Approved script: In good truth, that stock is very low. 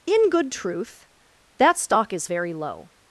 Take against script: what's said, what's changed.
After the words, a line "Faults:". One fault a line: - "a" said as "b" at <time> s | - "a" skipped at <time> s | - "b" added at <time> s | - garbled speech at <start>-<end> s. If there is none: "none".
In good truth, that stock is very low.
Faults:
none